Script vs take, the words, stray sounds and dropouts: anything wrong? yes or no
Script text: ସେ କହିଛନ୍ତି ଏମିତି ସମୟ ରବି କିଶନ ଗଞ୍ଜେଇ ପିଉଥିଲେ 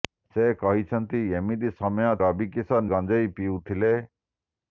no